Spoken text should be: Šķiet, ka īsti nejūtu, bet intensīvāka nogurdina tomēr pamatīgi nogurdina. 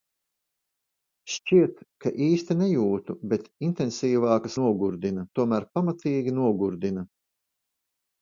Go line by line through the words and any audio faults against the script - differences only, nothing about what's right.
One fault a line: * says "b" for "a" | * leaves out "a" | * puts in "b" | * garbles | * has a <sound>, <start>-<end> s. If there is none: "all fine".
all fine